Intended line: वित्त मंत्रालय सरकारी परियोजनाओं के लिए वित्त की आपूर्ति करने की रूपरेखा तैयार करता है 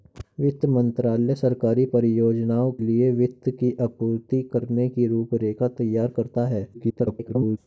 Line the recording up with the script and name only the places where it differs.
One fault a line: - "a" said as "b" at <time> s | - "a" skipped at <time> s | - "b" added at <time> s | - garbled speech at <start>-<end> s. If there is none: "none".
- "के" skipped at 2.7 s
- garbled speech at 6.7-7.6 s